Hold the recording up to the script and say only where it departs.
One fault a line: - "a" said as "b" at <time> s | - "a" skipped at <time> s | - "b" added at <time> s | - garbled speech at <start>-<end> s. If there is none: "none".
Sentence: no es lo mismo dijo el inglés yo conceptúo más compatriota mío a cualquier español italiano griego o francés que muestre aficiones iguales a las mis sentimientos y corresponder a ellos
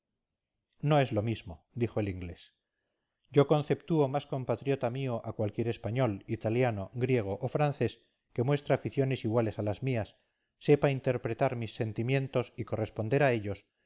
- "mías sepa interpretar" added at 9.8 s